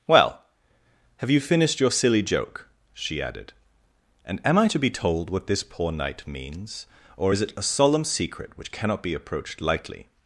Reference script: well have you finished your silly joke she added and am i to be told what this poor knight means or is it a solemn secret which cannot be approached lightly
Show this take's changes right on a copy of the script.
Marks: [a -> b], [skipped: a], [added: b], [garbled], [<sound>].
well have you finished your silly joke she added and am i to be told what this poor knight means or is it a solemn secret which cannot be approached lightly